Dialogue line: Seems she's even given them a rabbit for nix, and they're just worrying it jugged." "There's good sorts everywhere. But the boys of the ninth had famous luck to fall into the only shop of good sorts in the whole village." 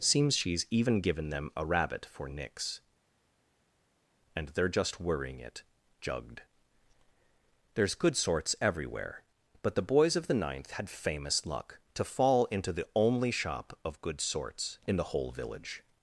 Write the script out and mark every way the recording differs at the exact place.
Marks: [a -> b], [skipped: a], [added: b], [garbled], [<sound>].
Seems she's even given them a rabbit for nix, and they're just worrying it jugged." "There's good sorts everywhere. But the boys of the ninth had famous luck to fall into the only shop of good sorts in the whole village."